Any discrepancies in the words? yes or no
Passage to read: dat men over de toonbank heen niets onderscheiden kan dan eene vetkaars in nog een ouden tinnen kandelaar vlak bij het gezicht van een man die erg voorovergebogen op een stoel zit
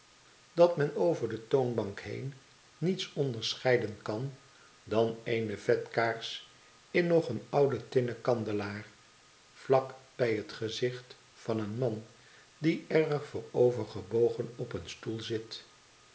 no